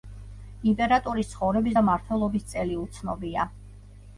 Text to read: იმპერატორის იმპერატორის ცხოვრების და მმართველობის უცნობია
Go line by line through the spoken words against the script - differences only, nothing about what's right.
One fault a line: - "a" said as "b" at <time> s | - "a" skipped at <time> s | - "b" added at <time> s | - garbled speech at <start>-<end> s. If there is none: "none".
- "იმპერატორის" skipped at 1.3 s
- "წელი" added at 2.6 s